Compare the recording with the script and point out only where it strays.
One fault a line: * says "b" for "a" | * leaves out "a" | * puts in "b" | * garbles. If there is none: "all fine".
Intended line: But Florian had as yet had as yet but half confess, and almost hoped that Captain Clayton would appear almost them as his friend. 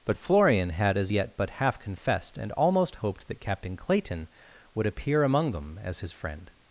* leaves out "had as yet"
* says "confessed" for "confess"
* says "among" for "almost"